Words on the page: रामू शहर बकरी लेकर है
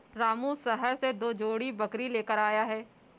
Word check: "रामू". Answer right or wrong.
right